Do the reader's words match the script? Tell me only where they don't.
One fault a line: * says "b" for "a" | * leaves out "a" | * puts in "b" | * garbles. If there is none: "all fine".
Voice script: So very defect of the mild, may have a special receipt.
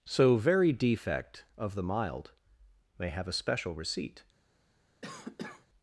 all fine